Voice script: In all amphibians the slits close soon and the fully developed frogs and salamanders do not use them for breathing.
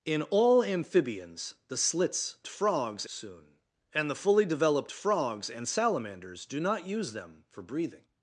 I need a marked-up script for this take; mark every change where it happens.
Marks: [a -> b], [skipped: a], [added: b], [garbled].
In all amphibians the slits [close -> frogs] soon and the fully developed frogs and salamanders do not use them for breathing.